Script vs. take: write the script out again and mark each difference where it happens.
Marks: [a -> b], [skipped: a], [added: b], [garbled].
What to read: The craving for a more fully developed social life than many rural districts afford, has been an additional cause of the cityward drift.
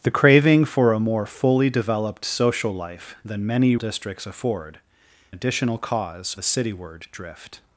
The craving for a more fully developed social life than many [skipped: rural] districts afford, [skipped: has been an] additional cause [skipped: of] the cityward drift.